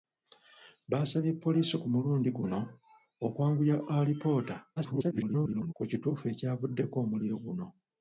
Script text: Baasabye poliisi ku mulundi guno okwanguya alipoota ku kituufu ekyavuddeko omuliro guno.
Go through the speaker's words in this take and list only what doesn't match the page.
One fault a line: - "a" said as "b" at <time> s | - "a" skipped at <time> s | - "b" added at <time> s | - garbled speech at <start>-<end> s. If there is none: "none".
- garbled speech at 4.8-5.7 s